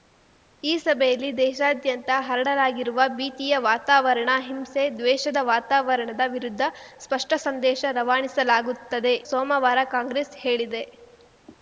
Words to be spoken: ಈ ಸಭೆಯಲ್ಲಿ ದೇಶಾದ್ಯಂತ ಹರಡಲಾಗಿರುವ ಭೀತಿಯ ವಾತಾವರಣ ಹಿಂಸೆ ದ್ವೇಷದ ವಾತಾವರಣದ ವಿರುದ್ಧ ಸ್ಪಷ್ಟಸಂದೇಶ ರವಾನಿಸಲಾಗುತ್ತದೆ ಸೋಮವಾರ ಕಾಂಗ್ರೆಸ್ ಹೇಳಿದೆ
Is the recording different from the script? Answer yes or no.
no